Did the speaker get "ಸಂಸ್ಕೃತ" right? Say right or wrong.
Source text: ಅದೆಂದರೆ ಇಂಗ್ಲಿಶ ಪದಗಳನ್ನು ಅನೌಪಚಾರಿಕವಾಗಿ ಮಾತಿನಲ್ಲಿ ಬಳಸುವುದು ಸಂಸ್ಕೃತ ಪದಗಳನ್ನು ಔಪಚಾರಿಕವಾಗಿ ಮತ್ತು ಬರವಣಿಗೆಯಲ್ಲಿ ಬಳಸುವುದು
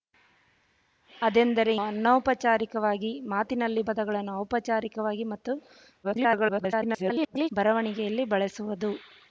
wrong